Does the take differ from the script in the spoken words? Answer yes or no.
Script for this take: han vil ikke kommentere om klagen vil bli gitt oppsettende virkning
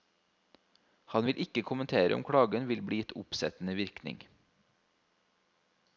no